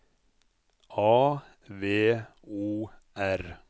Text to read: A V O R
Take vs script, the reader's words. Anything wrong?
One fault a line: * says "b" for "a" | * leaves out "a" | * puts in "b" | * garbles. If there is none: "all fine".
all fine